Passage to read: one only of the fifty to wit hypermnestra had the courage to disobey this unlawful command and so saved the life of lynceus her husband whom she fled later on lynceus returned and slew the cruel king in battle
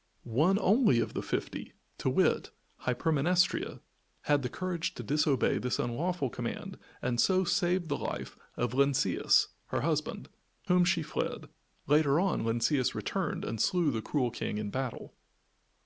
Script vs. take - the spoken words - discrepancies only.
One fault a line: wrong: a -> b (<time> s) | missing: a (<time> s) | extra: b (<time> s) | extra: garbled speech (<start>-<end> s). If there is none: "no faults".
no faults